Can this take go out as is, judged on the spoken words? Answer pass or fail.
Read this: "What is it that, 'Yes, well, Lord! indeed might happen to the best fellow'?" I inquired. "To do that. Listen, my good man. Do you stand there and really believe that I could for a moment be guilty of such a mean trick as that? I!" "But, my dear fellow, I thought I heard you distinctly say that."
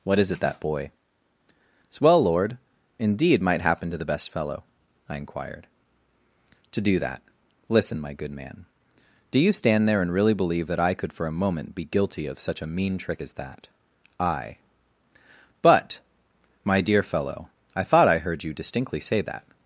fail